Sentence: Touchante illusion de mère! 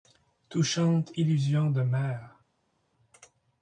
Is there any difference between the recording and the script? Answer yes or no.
no